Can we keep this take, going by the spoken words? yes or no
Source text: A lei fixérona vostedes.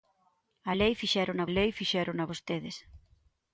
no